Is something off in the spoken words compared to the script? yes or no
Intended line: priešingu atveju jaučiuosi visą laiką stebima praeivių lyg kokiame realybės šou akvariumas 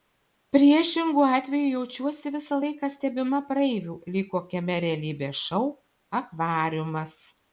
no